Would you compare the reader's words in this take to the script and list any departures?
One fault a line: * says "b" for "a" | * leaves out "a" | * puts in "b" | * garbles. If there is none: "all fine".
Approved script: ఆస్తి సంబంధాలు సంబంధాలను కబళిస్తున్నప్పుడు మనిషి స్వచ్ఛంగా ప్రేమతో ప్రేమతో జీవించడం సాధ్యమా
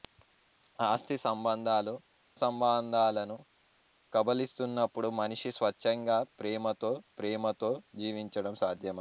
all fine